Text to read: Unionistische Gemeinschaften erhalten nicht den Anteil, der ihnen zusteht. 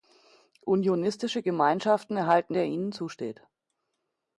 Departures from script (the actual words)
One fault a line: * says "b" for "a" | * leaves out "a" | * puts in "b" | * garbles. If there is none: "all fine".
* leaves out "nicht den Anteil"